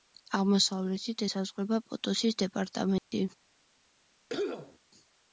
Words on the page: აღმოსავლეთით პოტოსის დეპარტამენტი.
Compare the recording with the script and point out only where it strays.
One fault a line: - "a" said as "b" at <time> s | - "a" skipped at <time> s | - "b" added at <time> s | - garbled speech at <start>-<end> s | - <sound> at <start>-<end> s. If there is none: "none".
- "ესაზღვრება" added at 1.2 s
- dropout at 3.0-3.1 s
- cough at 4.3-4.8 s